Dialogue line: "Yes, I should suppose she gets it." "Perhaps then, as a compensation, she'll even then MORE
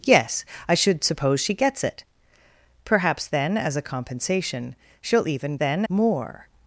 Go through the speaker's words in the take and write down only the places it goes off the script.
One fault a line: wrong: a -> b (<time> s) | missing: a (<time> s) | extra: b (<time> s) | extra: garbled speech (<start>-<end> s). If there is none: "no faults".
no faults